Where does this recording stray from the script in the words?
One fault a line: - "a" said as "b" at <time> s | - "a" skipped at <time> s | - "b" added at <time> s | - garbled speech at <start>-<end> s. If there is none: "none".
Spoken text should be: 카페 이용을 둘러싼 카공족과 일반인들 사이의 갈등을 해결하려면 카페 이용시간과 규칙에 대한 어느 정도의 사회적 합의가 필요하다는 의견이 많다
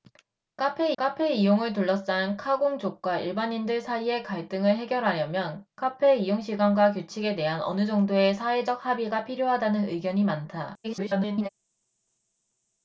- "카페" added at 1.0 s
- garbled speech at 10.8-11.5 s